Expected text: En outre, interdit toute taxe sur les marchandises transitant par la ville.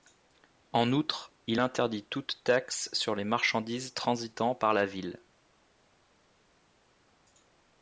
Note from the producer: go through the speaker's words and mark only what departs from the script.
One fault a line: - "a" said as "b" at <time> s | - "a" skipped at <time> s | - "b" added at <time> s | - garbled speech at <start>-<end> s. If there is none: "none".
- "il" added at 1.4 s